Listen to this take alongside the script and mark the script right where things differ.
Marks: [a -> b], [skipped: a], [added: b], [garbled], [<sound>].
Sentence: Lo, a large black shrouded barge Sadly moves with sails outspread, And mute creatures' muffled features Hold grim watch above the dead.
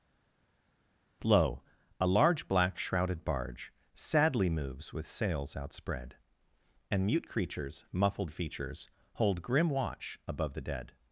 Lo, a large black shrouded barge Sadly moves with sails outspread, And mute creatures' muffled features Hold grim watch above the dead.